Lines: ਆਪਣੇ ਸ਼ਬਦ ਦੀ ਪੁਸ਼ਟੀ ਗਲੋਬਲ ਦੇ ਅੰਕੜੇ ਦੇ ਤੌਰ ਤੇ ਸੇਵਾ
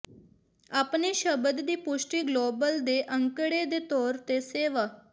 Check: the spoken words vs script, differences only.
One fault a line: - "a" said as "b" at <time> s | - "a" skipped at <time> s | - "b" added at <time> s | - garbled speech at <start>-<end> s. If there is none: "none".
none